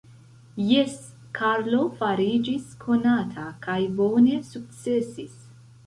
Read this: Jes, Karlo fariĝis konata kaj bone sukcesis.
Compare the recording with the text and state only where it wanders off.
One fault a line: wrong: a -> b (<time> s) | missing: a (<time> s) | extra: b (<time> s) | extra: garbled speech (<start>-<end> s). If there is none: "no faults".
no faults